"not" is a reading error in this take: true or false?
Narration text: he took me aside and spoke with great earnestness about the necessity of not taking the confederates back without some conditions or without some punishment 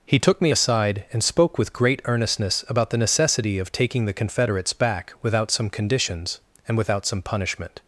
true